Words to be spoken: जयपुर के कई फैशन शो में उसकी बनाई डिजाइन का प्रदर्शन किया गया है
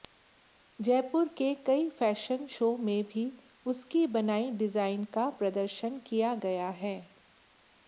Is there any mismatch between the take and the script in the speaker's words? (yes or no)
yes